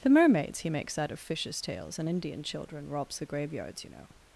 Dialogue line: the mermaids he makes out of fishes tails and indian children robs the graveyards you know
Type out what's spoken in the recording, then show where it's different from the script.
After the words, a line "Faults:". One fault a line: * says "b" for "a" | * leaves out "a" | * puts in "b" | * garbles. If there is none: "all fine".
the mermaids he makes out of fishes tails and indian children robs the graveyards you know
Faults:
all fine